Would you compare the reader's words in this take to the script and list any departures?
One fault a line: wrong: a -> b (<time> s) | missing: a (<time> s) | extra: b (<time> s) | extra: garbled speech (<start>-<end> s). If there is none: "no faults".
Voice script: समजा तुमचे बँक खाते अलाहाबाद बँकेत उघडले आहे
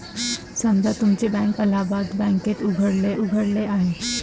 missing: खाते (1.6 s)
extra: उघडले (3.2 s)